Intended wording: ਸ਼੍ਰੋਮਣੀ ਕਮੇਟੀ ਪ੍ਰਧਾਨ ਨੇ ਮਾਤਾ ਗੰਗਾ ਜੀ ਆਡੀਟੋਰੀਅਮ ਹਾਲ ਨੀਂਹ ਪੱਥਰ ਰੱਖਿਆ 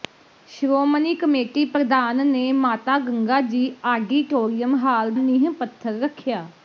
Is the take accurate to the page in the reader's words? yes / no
yes